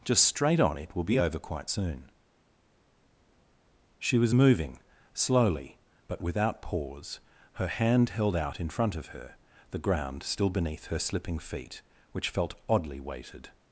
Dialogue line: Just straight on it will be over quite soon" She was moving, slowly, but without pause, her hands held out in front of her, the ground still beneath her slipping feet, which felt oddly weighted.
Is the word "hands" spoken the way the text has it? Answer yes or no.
no